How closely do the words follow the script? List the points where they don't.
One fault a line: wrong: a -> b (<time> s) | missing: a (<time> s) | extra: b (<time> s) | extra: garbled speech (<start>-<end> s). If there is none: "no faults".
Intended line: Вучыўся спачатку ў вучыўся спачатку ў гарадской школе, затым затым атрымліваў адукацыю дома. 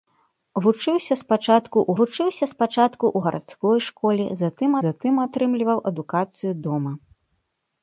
no faults